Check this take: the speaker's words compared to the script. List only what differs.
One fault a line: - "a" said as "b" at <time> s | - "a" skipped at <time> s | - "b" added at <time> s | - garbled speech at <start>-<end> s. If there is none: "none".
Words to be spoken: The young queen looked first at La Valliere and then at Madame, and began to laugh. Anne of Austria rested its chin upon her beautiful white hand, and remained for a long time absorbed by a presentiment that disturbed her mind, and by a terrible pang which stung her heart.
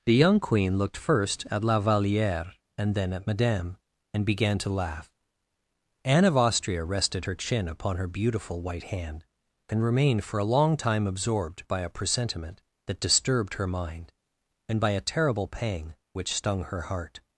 - "its" said as "her" at 7.2 s